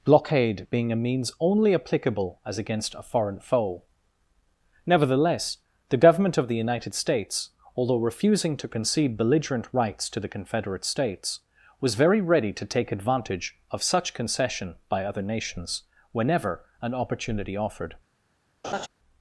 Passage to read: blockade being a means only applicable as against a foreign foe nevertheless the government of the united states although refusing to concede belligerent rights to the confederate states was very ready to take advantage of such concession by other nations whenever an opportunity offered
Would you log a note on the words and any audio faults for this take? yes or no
yes